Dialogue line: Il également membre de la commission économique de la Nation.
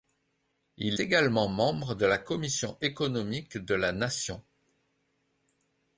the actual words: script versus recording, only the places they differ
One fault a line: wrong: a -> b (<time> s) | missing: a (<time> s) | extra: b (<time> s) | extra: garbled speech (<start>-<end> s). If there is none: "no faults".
no faults